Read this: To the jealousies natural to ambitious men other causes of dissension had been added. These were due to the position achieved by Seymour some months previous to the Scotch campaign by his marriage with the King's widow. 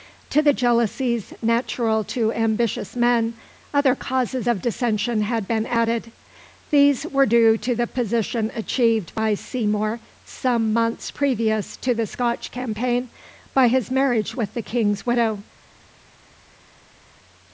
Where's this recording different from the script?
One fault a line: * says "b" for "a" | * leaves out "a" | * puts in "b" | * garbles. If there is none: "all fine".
all fine